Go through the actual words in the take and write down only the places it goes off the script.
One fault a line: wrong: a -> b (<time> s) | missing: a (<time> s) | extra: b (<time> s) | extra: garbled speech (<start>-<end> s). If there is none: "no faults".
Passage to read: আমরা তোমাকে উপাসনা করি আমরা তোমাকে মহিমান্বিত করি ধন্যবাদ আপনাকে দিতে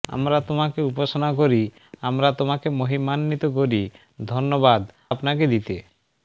no faults